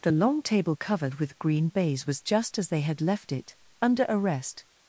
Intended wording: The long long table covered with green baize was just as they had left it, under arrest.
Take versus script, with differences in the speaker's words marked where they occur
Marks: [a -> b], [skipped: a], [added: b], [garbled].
The long [skipped: long] table covered with green baize was just as they had left it, under arrest.